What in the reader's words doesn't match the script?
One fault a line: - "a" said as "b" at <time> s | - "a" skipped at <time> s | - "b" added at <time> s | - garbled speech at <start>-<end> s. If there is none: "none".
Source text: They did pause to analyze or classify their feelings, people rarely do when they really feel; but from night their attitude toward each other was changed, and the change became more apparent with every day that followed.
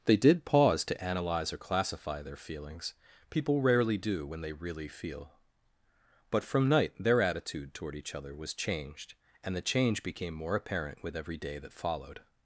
none